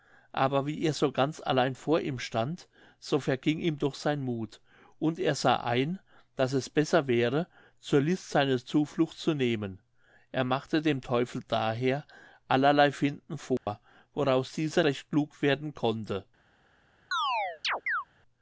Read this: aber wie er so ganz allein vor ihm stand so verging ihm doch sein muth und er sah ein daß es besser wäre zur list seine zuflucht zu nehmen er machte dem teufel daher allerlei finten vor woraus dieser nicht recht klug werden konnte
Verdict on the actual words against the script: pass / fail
fail